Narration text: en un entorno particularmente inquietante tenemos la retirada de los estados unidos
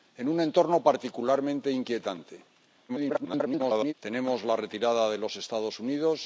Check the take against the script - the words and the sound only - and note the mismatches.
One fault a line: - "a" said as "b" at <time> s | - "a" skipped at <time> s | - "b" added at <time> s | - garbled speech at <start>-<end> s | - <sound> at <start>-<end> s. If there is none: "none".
- garbled speech at 2.9-3.9 s